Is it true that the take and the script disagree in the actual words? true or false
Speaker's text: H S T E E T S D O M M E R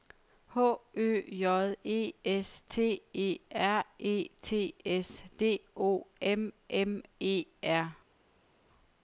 true